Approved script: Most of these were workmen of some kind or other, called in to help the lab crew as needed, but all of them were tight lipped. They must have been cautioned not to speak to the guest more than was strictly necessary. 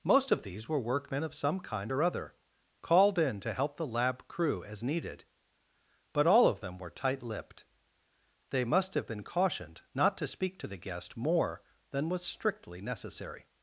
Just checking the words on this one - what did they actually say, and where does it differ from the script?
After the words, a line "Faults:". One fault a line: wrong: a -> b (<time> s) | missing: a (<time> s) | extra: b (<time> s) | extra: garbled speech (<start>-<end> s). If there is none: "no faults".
Most of these were workmen of some kind or other, called in to help the lab crew as needed, but all of them were tight lipped. They must have been cautioned not to speak to the guest more than was strictly necessary.
Faults:
no faults